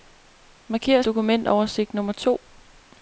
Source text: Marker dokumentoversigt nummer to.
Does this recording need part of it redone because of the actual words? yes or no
no